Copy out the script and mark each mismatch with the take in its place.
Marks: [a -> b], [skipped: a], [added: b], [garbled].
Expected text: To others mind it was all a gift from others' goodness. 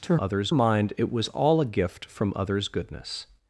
To others mind it was all a gift from others' goodness.